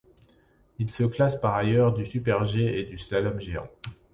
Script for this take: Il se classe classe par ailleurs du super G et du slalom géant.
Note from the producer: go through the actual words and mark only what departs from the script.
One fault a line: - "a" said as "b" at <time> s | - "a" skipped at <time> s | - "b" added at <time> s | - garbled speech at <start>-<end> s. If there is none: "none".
- "classe" skipped at 1.4 s